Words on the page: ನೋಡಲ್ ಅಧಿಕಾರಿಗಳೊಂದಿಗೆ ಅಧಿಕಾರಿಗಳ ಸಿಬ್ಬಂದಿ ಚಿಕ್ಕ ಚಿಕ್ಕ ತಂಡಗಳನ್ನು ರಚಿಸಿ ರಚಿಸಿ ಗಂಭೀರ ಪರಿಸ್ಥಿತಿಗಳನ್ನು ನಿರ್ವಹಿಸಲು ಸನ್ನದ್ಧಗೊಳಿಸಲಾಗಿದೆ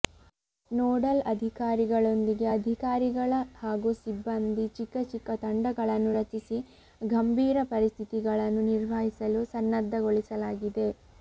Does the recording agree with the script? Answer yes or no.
no